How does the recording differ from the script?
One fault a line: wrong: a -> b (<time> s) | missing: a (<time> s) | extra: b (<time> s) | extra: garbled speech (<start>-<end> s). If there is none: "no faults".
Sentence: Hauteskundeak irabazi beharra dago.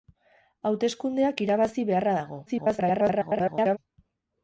extra: garbled speech (2.5-3.8 s)